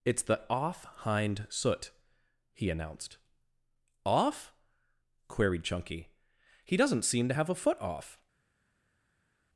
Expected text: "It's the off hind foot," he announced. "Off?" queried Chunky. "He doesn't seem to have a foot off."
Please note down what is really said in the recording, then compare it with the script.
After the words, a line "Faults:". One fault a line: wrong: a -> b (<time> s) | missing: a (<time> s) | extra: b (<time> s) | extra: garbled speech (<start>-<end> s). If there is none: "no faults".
"It's the off hind soot," he announced. "Off?" queried Chunky. "He doesn't seem to have a foot off."
Faults:
wrong: foot -> soot (1.5 s)